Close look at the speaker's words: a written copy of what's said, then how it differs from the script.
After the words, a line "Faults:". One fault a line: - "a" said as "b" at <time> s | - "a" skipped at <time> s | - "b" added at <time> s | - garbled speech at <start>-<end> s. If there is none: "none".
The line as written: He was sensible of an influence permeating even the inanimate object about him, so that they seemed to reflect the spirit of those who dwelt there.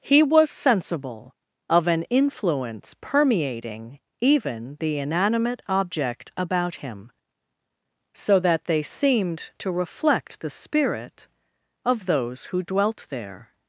He was sensible of an influence permeating even the inanimate object about him, so that they seemed to reflect the spirit of those who dwelt there.
Faults:
none